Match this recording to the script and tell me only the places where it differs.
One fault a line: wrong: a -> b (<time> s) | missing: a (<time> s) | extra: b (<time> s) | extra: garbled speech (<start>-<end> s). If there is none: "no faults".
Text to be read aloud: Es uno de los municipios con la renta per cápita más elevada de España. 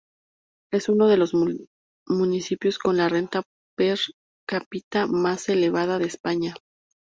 no faults